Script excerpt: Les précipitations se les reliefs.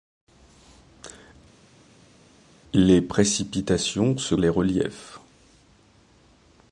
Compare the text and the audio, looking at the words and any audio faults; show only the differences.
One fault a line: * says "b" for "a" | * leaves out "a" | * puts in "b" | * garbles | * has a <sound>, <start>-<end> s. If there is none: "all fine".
all fine